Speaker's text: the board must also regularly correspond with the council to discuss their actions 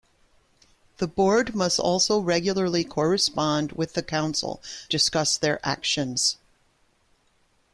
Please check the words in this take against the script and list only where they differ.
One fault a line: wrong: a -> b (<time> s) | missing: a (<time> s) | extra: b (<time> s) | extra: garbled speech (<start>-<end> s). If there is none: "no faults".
missing: to (4.6 s)